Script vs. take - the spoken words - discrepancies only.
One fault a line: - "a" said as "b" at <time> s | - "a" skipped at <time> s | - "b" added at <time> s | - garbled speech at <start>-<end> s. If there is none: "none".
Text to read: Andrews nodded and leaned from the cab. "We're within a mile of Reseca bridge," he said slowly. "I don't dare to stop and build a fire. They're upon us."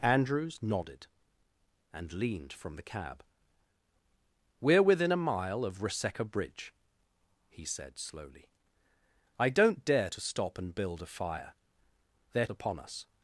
none